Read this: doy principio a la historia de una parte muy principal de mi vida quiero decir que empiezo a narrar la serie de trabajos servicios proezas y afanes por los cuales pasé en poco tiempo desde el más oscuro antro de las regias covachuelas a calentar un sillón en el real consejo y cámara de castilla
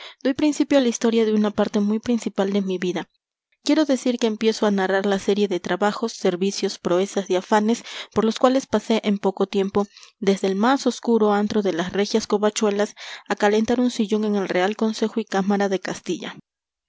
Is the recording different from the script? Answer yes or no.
no